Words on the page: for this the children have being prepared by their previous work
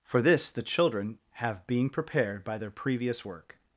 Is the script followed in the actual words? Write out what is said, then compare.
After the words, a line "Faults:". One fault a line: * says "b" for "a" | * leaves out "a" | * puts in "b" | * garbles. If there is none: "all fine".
for this the children have being prepared by their previous work
Faults:
all fine